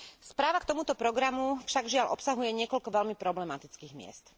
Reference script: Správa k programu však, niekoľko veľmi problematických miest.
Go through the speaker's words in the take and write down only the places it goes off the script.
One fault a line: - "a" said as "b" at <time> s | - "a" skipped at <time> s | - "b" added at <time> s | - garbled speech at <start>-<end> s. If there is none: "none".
- "tomuto" added at 0.7 s
- "žiaľ obsahuje" added at 1.9 s